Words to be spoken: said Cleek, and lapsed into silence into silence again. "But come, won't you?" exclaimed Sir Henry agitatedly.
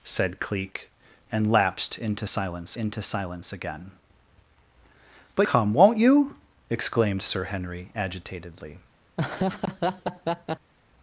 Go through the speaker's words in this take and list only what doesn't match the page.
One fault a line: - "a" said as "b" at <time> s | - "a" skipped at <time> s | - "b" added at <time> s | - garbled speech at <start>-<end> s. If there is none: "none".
none